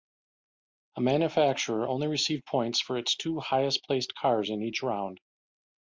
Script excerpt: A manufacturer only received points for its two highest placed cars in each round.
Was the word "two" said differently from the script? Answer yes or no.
no